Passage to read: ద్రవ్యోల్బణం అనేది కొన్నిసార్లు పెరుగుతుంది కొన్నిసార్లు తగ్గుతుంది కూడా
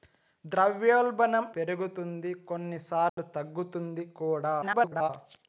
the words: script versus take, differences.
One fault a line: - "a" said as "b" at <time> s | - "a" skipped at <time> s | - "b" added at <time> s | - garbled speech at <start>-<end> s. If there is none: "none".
- "అనేది కొన్నిసార్లు" skipped at 1.4 s
- garbled speech at 4.6-5.1 s